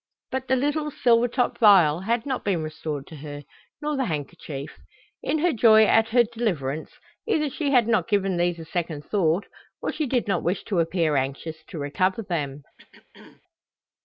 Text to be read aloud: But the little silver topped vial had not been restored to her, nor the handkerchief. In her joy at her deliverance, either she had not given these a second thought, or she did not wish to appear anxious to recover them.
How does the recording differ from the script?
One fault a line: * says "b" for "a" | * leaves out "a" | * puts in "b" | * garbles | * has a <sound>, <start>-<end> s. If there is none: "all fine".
* has a throat clearing, 12.8-13.4 s